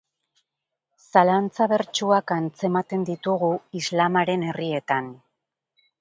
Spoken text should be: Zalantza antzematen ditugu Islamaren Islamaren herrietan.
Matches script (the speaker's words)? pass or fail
fail